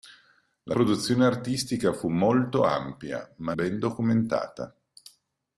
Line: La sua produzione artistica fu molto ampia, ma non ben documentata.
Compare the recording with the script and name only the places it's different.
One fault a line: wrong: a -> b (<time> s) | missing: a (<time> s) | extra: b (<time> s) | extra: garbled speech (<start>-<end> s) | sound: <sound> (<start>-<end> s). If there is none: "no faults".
missing: sua (0.8 s)
missing: non (3.5 s)